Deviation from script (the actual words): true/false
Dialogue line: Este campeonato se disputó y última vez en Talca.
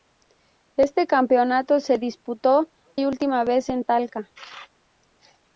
false